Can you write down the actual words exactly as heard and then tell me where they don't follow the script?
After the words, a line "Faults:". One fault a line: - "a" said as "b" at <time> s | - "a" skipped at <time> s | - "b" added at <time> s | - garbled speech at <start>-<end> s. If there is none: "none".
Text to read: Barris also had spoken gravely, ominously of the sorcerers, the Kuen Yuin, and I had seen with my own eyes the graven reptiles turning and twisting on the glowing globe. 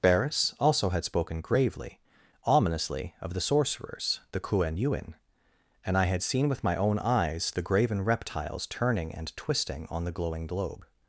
Barris also had spoken gravely, ominously of the sorcerers, the Kuen Yuin, and I had seen with my own eyes the graven reptiles turning and twisting on the glowing globe.
Faults:
none